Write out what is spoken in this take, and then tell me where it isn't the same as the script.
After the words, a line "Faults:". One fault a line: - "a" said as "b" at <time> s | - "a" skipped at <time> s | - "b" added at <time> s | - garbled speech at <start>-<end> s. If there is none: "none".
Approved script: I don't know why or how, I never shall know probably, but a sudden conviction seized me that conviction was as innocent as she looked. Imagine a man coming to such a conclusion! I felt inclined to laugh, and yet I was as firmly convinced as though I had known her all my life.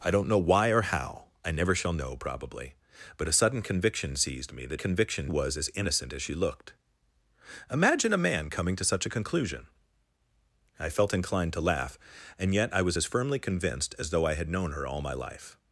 I don't know why or how, I never shall know probably, but a sudden conviction seized me that conviction was as innocent as she looked. Imagine a man coming to such a conclusion! I felt inclined to laugh, and yet I was as firmly convinced as though I had known her all my life.
Faults:
none